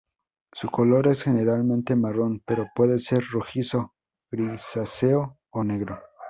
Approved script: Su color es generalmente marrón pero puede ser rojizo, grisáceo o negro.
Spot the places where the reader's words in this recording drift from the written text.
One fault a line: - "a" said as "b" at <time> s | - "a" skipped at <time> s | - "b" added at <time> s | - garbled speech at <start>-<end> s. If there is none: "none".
none